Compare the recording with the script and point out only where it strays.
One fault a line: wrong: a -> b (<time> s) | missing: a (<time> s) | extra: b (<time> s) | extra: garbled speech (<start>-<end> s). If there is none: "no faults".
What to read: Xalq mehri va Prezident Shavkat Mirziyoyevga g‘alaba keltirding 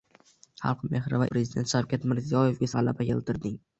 no faults